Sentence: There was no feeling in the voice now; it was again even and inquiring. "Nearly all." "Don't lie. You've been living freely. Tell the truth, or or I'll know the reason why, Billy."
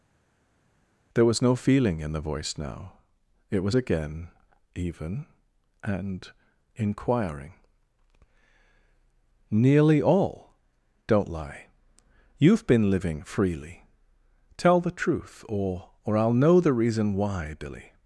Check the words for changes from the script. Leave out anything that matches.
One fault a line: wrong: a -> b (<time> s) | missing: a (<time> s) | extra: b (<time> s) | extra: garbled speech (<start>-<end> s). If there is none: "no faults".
no faults